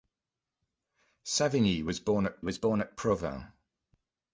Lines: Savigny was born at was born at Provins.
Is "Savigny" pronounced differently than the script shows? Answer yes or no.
no